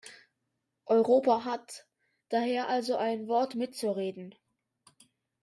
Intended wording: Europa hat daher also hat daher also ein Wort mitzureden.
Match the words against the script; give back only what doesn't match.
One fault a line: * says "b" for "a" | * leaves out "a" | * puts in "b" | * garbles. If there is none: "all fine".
* leaves out "hat daher also"